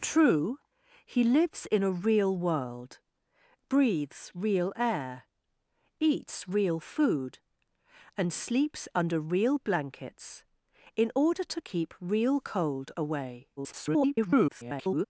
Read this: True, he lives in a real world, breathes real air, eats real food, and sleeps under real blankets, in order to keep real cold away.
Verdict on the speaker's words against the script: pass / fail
fail